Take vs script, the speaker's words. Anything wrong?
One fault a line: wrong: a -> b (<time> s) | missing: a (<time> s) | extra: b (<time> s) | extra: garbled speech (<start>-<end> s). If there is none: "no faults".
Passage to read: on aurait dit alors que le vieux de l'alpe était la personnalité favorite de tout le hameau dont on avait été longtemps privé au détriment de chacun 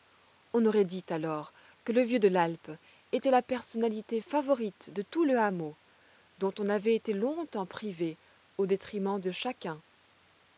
no faults